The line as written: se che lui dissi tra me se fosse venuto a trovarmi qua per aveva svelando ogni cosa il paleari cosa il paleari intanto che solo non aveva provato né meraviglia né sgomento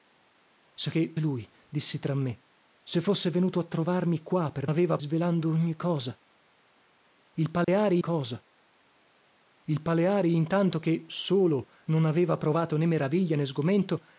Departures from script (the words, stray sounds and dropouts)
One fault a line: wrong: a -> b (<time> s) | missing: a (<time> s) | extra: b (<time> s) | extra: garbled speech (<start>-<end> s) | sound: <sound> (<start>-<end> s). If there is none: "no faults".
sound: dropout (7.6-7.7 s)